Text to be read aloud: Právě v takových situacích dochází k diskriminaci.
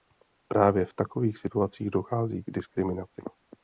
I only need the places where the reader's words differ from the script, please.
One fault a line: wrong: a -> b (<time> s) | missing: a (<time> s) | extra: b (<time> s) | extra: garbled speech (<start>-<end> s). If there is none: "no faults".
no faults